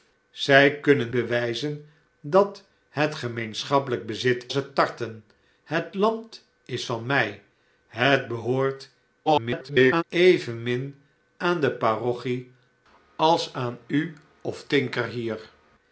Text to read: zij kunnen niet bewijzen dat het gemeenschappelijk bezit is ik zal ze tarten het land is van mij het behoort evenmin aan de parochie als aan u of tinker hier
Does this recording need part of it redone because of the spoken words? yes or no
yes